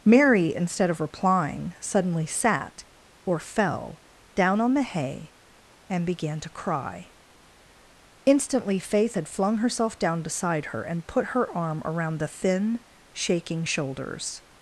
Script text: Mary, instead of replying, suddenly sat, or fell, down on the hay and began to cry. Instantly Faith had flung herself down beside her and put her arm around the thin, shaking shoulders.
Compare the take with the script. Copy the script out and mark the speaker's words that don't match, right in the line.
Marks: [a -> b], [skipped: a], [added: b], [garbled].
Mary, instead of replying, suddenly sat, or fell, down on the hay and began to cry. Instantly Faith had flung herself down beside her and put her arm around the thin, shaking shoulders.